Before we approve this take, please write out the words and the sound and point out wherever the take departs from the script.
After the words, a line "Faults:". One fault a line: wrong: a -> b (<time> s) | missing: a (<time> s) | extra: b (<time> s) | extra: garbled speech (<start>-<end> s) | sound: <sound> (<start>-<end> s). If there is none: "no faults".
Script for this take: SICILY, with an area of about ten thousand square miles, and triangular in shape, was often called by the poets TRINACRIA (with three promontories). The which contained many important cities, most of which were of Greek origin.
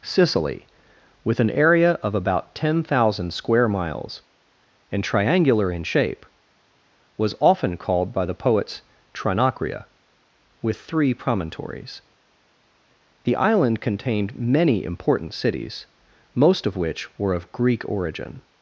SICILY, with an area of about ten thousand square miles, and triangular in shape, was often called by the poets TRINACRIA (with three promontories). The island contained many important cities, most of which were of Greek origin.
Faults:
wrong: which -> island (13.4 s)